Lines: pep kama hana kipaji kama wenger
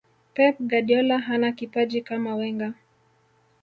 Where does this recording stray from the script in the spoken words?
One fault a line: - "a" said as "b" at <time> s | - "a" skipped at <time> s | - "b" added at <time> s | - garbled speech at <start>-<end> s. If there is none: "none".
- "kama" said as "guardiola" at 0.6 s